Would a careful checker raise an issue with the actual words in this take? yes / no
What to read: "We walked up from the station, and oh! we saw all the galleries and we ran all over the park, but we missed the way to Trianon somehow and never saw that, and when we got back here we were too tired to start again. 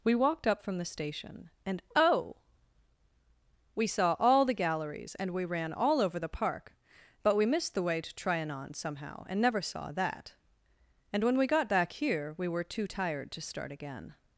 no